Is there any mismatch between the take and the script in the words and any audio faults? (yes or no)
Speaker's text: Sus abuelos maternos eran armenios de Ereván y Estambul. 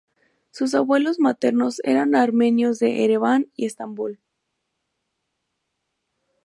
no